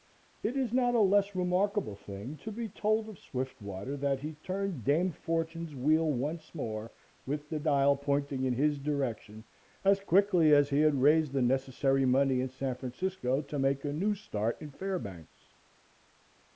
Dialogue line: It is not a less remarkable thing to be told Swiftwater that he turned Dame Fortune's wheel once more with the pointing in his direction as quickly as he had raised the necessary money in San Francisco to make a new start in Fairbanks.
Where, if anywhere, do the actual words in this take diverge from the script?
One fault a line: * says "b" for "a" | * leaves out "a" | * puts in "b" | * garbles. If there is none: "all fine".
* puts in "of"
* puts in "dial"